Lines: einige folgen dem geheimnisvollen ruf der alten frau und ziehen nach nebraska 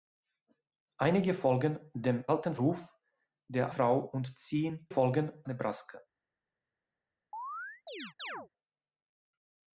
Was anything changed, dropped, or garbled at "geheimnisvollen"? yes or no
yes